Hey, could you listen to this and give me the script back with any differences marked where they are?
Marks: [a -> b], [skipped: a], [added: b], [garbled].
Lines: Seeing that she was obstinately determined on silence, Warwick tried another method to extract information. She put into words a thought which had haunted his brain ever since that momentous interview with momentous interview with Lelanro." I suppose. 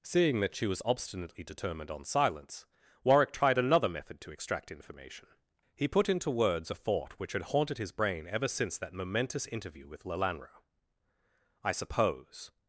Seeing that she was obstinately determined on silence, Warwick tried another method to extract information. [She -> He] put into words a thought which had haunted his brain ever since that momentous interview with [skipped: momentous interview with] Lelanro." I suppose.